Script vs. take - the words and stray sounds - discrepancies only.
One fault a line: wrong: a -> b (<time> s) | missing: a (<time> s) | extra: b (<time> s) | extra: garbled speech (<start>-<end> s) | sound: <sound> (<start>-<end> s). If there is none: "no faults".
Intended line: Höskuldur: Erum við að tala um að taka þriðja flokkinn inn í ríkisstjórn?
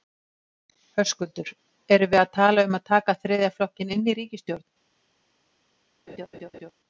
sound: laugh (6.1-6.7 s)